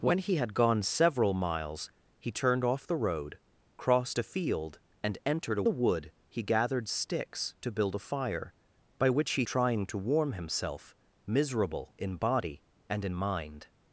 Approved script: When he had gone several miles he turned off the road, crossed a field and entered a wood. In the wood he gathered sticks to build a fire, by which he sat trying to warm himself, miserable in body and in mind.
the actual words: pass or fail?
fail